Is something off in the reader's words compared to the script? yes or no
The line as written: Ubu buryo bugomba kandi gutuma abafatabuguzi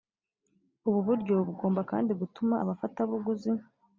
no